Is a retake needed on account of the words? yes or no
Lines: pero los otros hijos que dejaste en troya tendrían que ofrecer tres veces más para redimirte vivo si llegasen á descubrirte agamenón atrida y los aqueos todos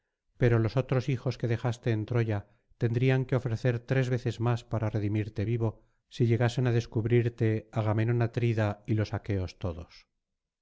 no